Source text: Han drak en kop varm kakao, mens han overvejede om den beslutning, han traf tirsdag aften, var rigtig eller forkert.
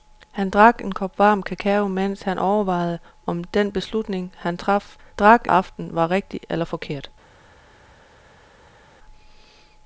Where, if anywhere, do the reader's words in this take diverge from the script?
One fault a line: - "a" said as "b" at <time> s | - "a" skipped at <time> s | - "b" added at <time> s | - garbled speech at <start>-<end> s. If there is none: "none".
- "tirsdag" said as "drak" at 5.1 s